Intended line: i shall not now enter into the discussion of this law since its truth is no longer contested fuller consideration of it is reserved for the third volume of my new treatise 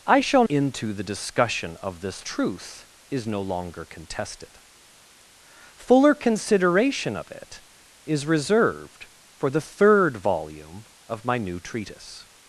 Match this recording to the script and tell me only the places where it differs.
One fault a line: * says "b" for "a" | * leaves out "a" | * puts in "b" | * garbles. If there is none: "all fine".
* leaves out "not now enter"
* leaves out "law since its"